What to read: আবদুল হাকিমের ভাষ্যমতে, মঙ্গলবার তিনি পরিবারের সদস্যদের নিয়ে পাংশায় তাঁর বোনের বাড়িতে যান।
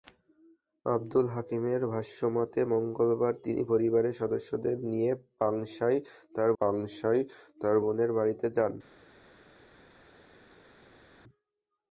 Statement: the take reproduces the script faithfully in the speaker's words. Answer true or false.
false